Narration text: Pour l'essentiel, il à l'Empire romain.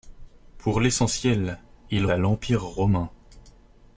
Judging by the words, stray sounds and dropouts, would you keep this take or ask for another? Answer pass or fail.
pass